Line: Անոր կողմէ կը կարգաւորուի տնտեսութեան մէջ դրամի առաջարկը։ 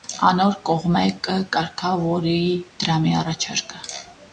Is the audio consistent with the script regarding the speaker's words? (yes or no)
no